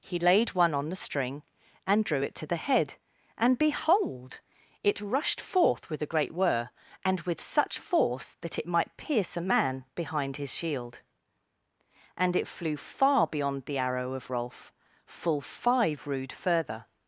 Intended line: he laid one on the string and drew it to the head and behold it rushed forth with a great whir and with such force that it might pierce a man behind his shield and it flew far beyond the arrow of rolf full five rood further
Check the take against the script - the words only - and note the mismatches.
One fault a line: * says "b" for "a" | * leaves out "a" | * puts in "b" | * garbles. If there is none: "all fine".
all fine